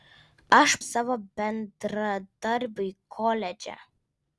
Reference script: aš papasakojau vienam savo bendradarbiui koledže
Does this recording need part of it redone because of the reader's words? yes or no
yes